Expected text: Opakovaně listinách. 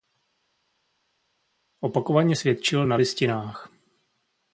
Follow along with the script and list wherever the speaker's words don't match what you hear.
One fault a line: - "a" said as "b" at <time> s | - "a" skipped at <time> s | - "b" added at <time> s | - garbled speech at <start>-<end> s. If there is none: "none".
- "svědčil na" added at 2.3 s